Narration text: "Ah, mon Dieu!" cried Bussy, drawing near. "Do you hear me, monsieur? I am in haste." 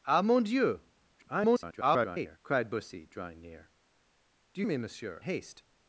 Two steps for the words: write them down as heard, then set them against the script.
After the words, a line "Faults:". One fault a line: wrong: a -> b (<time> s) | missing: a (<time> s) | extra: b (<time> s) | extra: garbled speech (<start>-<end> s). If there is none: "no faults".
"Ah, mon Dieu!" [garbled] cried Bussy, drawing near. "Do you me, monsieur? haste."
Faults:
extra: garbled speech (1.2-2.4 s)
missing: hear (4.7 s)
missing: I am in (5.2 s)